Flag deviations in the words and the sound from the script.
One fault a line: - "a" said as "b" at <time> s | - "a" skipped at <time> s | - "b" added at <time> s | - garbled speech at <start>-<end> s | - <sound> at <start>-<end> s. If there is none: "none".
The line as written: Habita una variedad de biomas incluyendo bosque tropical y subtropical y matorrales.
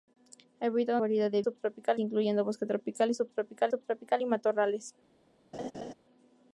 - "una" skipped at 1.0 s
- "biomas" said as "subtropical" at 1.4 s
- "subtropical" added at 3.7 s
- laugh at 5.5-5.9 s